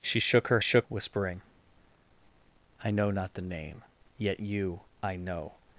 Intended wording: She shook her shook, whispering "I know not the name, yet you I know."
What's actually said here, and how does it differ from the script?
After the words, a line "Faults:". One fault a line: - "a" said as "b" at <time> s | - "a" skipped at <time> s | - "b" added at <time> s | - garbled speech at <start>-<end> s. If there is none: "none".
She shook her shook, whispering "I know not the name, yet you I know."
Faults:
none